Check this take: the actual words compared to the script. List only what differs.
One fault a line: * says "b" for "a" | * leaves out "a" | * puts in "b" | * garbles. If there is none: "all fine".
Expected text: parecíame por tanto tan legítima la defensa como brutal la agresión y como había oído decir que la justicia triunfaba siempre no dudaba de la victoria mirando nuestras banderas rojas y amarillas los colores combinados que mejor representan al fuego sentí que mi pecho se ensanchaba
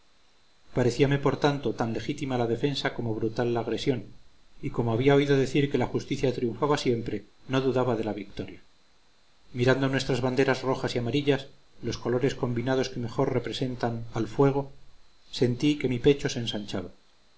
all fine